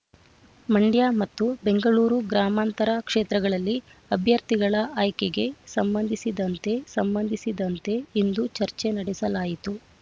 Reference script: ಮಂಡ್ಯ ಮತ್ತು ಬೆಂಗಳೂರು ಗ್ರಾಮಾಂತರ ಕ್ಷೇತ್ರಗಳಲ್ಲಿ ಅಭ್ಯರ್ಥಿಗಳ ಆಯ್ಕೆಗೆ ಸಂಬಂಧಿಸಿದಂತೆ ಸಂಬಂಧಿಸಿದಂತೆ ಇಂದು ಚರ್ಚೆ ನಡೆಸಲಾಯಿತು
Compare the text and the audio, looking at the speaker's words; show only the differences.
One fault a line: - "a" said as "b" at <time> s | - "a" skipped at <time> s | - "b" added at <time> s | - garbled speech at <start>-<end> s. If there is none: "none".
none